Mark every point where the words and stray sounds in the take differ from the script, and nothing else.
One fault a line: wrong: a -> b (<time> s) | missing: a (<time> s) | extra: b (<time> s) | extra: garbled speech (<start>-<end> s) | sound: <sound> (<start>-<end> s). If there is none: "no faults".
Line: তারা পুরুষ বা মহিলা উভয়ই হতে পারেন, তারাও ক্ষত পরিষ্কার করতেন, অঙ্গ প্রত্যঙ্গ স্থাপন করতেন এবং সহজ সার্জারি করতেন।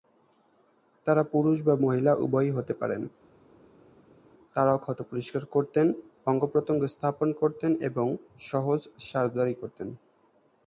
no faults